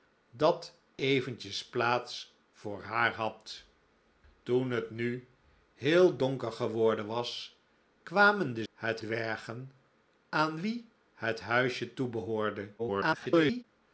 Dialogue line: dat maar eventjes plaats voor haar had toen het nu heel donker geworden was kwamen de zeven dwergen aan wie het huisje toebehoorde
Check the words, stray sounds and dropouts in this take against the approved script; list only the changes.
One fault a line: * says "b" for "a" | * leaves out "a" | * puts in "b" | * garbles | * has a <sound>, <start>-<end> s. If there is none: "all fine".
* leaves out "maar"
* says "het" for "zeven"
* garbles